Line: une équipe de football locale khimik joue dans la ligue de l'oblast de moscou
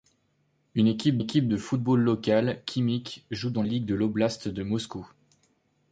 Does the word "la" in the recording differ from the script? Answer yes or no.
yes